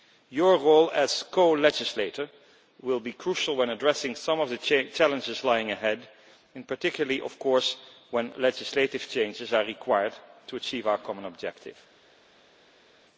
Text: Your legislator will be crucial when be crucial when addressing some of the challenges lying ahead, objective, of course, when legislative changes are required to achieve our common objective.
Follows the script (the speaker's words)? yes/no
no